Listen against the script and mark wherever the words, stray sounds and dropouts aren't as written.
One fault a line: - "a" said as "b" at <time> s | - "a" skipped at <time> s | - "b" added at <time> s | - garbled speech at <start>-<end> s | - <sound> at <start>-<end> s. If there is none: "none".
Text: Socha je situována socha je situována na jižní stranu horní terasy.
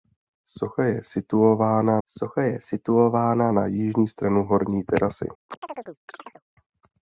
- chirp at 5.5-6.4 s